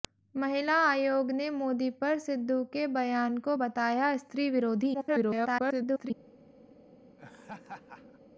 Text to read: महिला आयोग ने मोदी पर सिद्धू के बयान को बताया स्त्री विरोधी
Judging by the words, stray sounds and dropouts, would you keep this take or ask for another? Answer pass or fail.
fail